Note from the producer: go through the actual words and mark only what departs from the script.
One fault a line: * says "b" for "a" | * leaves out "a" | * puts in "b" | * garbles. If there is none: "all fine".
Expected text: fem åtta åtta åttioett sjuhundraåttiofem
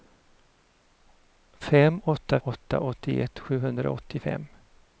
all fine